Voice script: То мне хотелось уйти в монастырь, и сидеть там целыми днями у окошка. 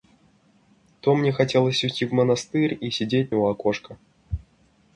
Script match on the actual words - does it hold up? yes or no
no